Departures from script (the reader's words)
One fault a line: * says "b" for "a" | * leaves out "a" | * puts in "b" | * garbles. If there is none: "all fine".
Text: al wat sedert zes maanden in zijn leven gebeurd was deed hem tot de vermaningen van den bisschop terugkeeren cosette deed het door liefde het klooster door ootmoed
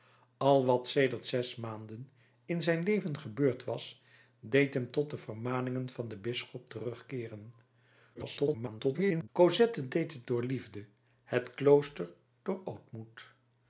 * garbles